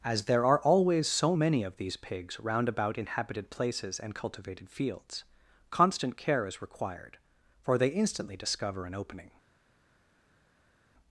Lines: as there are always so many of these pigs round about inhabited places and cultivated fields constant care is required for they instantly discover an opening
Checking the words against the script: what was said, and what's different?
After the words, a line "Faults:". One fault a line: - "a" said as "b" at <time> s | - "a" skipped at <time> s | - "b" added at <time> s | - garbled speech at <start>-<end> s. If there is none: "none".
as there are always so many of these pigs round about inhabited places and cultivated fields constant care is required for they instantly discover an opening
Faults:
none